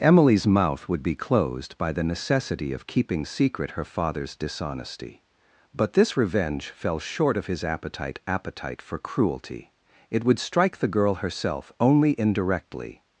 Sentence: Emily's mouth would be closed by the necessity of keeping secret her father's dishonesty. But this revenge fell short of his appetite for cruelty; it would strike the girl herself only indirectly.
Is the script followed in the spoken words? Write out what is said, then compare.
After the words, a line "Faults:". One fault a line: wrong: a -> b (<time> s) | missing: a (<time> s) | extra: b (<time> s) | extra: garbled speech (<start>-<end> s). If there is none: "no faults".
Emily's mouth would be closed by the necessity of keeping secret her father's dishonesty. But this revenge fell short of his appetite appetite for cruelty; it would strike the girl herself only indirectly.
Faults:
extra: appetite (8.2 s)